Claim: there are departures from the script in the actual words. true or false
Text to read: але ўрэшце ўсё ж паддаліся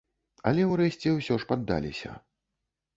false